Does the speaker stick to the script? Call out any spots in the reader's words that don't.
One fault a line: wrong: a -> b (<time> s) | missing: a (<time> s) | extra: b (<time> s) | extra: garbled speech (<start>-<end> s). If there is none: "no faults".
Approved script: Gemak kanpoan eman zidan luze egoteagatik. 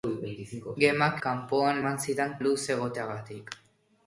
no faults